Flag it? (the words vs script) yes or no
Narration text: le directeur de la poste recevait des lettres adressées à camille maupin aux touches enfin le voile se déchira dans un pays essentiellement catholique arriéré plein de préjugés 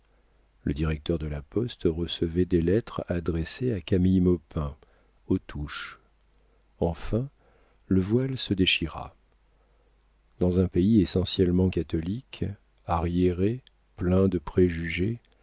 no